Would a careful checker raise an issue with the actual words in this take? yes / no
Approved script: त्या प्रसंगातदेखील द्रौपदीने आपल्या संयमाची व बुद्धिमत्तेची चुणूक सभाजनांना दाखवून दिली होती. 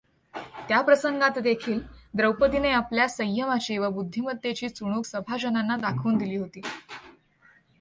no